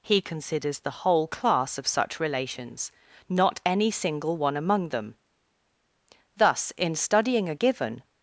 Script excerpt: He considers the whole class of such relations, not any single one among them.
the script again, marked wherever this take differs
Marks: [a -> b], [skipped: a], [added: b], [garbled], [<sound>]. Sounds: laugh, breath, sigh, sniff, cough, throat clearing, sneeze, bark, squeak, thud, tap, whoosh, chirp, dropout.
He considers the whole class of such relations, not any single one among them. [added: Thus in studying a given]